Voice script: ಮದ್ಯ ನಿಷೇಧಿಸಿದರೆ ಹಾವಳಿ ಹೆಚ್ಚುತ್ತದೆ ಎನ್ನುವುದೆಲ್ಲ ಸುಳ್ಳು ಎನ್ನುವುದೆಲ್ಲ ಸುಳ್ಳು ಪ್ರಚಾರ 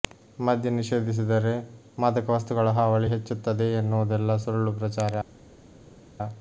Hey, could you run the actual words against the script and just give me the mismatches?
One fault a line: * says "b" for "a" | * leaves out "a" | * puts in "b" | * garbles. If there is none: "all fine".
* puts in "ಮಾದಕ ವಸ್ತುಗಳ"
* leaves out "ಎನ್ನುವುದೆಲ್ಲ ಸುಳ್ಳು"